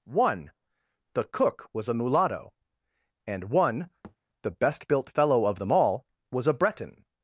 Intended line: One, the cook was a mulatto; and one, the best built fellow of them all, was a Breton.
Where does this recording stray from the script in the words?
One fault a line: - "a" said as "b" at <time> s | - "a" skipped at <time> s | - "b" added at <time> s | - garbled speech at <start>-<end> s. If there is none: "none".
none